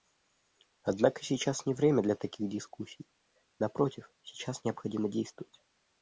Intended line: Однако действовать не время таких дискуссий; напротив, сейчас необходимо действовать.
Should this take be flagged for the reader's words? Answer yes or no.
yes